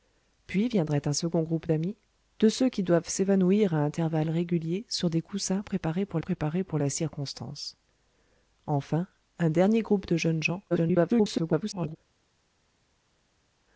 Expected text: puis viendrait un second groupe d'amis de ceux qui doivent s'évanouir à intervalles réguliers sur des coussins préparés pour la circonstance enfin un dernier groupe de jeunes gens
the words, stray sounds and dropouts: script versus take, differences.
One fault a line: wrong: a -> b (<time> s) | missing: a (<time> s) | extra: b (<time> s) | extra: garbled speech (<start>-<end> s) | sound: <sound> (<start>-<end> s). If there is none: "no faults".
extra: préparés pour (6.2 s)
extra: garbled speech (10.7-12.0 s)